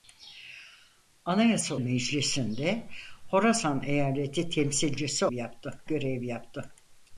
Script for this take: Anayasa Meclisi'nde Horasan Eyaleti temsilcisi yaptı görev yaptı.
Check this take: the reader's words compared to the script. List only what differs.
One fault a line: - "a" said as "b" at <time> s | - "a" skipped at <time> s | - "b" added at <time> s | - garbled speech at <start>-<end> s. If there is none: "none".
none